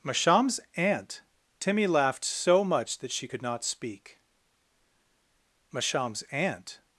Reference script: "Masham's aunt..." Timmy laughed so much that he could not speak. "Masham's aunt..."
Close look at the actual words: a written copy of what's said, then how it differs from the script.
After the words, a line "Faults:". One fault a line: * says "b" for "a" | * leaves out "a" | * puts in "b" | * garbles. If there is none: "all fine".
"Masham's aunt..." Timmy laughed so much that she could not speak. "Masham's aunt..."
Faults:
* says "she" for "he"